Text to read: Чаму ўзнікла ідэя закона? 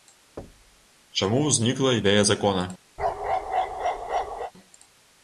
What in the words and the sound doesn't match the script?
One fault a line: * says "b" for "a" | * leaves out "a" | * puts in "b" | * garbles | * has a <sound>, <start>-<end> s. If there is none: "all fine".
* has a thud, 0.4-0.9 s
* has a bark, 3.0-4.5 s